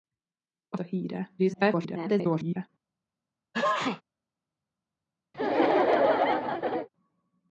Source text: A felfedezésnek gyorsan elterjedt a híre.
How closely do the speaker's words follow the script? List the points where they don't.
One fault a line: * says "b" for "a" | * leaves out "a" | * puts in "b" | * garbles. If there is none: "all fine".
* leaves out "felfedezésnek gyorsan elterjedt"
* garbles